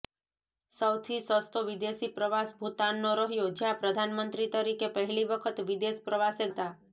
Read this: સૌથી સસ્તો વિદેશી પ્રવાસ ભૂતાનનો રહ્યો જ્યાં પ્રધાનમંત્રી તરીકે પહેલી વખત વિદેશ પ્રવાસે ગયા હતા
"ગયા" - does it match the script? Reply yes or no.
no